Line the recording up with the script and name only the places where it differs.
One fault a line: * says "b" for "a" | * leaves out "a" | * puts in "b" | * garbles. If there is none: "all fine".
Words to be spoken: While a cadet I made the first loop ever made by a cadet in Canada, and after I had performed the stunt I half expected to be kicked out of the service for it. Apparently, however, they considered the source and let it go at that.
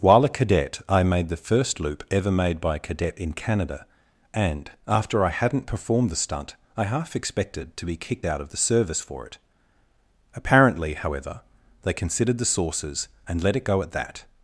* says "hadn't" for "had"
* says "sources" for "source"